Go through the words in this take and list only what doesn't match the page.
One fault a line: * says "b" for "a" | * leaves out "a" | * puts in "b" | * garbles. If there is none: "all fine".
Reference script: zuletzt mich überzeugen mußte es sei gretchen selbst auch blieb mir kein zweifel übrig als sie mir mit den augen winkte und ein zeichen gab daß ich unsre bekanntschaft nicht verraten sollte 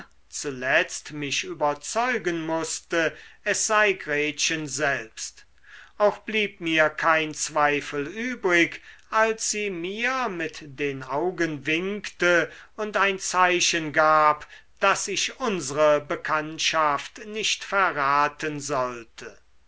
all fine